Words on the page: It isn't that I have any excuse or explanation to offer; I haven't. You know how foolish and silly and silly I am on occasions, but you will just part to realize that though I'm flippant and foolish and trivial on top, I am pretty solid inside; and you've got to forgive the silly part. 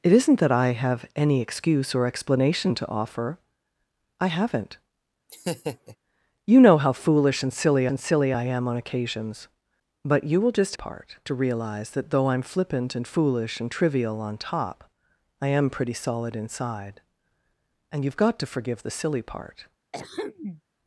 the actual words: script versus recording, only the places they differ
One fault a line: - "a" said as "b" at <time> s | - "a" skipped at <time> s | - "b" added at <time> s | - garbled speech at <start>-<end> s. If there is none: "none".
none